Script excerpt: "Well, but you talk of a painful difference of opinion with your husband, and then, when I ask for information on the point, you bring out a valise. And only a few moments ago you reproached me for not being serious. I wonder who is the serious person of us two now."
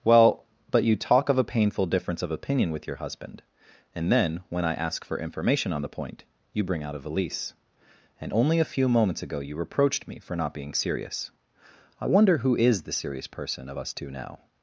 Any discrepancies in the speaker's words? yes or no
no